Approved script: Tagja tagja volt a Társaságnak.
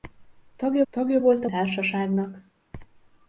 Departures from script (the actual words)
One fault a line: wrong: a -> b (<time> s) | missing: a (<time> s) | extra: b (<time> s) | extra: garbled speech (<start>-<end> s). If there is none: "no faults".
no faults